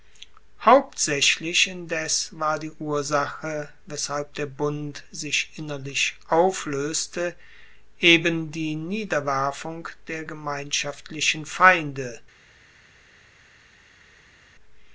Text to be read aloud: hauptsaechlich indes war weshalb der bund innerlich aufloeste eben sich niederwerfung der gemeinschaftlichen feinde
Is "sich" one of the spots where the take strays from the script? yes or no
yes